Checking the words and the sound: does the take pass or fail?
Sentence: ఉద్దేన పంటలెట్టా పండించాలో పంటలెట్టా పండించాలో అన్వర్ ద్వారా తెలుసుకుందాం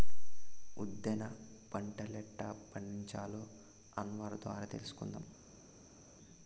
fail